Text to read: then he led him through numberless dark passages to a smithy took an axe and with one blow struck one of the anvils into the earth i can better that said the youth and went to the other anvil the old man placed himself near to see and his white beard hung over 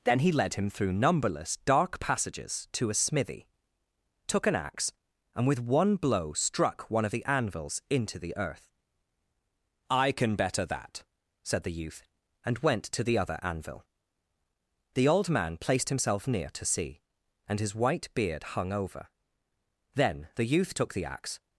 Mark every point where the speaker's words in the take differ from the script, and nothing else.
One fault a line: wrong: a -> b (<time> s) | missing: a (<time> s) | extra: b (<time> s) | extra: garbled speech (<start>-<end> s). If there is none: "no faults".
extra: then the youth took the axe (19.9 s)